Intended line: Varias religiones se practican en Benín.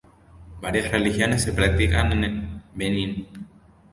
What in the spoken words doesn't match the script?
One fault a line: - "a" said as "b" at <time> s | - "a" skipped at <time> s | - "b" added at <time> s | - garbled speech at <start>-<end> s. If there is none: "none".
none